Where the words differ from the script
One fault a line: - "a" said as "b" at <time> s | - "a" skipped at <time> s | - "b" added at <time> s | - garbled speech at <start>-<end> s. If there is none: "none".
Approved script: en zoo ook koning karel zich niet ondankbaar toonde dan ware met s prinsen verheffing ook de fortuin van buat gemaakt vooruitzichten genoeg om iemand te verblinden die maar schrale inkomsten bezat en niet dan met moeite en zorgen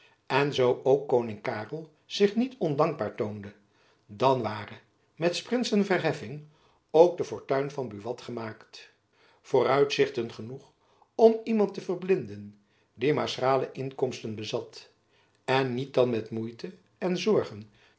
none